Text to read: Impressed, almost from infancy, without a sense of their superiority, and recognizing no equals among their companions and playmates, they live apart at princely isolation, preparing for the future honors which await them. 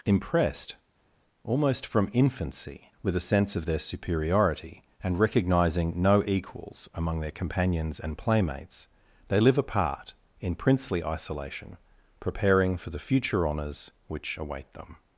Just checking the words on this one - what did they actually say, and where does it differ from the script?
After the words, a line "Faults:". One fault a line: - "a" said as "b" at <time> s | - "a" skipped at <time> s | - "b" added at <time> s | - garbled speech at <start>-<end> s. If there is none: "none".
Impressed, almost from infancy, with a sense of their superiority, and recognizing no equals among their companions and playmates, they live apart in princely isolation, preparing for the future honors which await them.
Faults:
- "without" said as "with" at 3.0 s
- "at" said as "in" at 10.4 s